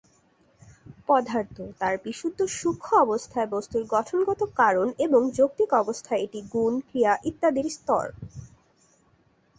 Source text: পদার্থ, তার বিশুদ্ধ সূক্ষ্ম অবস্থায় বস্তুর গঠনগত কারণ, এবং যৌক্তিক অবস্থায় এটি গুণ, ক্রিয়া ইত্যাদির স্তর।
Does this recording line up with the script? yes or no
yes